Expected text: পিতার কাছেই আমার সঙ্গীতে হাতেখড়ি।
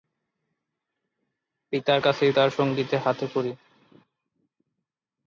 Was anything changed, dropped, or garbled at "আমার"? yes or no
yes